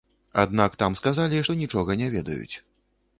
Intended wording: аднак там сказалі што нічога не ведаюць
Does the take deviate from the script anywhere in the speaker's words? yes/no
no